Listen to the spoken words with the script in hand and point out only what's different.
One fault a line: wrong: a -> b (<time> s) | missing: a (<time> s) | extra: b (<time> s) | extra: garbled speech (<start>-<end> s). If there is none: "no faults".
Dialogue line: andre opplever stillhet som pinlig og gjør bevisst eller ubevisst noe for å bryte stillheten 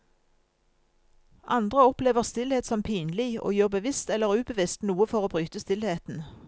no faults